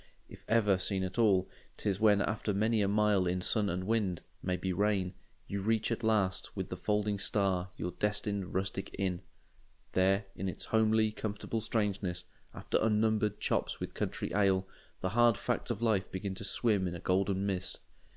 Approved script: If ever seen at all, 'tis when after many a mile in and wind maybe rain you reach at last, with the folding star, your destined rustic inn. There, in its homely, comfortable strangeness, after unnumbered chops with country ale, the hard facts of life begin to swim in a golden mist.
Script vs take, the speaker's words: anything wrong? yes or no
yes